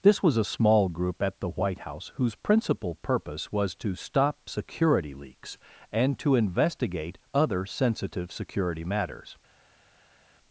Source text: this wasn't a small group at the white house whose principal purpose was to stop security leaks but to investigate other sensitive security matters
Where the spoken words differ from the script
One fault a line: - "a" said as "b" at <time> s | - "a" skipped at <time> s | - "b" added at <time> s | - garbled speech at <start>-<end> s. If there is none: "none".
- "wasn't" said as "was" at 0.2 s
- "but" said as "and" at 5.9 s